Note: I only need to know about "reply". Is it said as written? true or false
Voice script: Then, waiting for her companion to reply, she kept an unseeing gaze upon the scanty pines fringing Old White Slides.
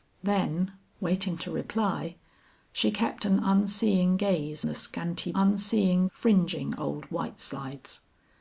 true